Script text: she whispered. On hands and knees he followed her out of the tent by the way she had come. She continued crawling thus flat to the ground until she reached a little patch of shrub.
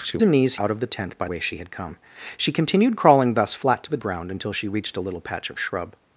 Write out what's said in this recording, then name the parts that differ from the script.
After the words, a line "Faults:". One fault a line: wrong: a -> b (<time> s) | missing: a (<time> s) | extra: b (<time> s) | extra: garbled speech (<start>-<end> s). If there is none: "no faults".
she and knees out of the tent by way she had come. She continued crawling thus flat to the ground until she reached a little patch of shrub.
Faults:
missing: whispered On hands (0.2 s)
missing: he followed her (0.5 s)
missing: the (1.3 s)